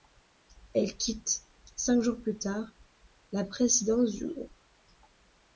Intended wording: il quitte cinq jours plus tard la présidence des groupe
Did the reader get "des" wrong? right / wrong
wrong